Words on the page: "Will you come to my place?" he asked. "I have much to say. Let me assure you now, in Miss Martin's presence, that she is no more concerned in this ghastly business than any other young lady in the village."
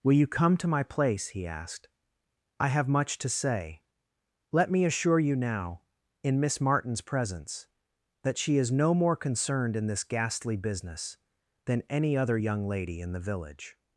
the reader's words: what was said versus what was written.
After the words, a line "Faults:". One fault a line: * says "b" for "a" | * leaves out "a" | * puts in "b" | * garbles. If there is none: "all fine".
"Will you come to my place?" he asked. "I have much to say. Let me assure you now, in Miss Martin's presence, that she is no more concerned in this ghastly business than any other young lady in the village."
Faults:
all fine